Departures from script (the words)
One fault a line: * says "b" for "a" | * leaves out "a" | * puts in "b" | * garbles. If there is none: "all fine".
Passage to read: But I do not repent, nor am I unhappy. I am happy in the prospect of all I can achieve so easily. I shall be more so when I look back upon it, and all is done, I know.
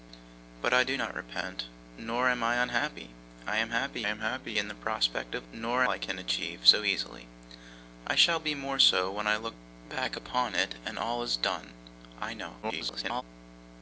* puts in "am happy"
* says "nor" for "all"
* garbles